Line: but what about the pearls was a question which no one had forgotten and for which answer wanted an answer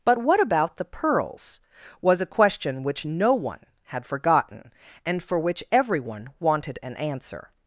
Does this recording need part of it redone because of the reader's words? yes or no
yes